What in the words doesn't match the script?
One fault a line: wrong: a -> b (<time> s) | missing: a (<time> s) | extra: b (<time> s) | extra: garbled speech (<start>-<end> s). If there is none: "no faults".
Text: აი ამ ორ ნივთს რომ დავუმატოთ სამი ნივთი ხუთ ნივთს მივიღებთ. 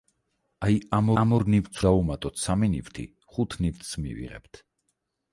extra: ამ (1.2 s)
missing: რომ (1.8 s)